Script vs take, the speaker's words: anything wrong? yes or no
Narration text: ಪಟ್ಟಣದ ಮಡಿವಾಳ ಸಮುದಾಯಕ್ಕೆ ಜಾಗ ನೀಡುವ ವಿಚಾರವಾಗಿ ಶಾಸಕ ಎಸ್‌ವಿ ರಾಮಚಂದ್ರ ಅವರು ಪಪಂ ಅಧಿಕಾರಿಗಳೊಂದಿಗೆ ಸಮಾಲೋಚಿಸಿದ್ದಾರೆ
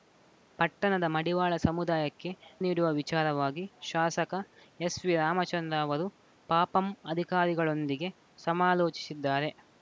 yes